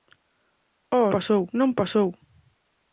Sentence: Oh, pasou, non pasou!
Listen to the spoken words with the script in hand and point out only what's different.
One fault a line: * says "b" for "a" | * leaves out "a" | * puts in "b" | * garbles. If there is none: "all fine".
all fine